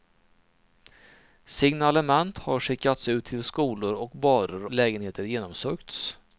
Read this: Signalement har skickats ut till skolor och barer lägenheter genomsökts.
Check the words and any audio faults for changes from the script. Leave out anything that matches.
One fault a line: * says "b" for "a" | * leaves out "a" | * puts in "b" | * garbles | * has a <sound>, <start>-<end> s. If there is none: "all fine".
all fine